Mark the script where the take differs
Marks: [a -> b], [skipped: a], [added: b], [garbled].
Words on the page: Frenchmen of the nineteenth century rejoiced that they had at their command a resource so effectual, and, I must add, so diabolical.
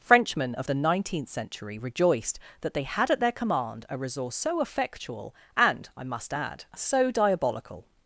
Frenchmen of the nineteenth century rejoiced that they had at their command a resource so effectual, and, I must add, so diabolical.